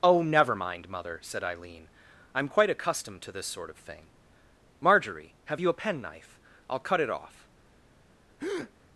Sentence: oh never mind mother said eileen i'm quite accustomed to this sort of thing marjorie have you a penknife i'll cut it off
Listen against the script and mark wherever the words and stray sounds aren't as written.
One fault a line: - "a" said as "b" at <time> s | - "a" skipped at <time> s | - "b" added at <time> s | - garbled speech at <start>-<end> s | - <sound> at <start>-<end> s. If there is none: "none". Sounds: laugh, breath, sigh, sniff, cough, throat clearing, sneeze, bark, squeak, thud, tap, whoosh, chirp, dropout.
- breath at 8.4-8.7 s